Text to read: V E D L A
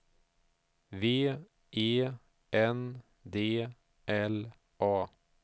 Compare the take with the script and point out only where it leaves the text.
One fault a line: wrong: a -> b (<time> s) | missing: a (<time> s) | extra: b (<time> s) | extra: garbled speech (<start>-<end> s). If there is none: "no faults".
extra: N (2.5 s)